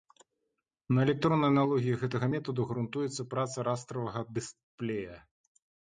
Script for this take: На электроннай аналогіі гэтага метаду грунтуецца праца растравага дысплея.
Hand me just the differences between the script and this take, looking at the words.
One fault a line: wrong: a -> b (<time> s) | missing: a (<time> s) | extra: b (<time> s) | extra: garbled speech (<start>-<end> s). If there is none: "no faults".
no faults